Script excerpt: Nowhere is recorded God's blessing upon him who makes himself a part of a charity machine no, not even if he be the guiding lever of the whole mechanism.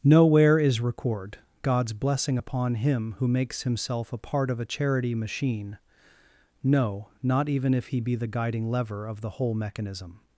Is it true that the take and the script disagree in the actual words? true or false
true